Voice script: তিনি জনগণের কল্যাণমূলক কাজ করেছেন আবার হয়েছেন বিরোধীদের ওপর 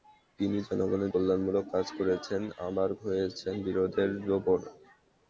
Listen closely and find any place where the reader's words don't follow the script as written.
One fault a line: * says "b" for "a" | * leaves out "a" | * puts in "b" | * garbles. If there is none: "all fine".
all fine